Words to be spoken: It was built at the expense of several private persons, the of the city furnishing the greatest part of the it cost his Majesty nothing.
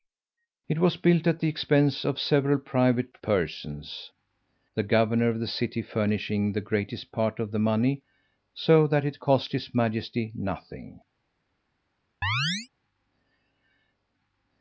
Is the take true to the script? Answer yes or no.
no